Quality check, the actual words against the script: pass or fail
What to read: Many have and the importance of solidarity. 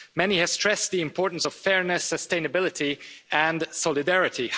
fail